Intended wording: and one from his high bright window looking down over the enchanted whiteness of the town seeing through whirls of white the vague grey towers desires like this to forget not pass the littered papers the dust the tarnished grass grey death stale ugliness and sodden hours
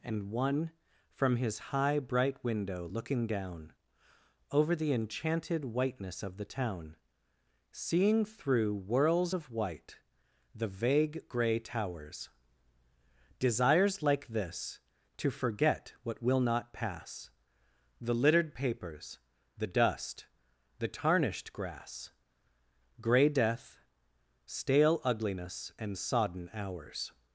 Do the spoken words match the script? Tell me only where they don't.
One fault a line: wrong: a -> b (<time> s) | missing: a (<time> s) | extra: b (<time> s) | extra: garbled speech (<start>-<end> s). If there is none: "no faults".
extra: what will (16.0 s)